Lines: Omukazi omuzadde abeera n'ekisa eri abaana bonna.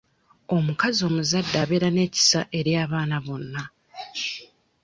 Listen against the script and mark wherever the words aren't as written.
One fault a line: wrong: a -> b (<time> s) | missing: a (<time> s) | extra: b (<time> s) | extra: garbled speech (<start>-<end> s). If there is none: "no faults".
no faults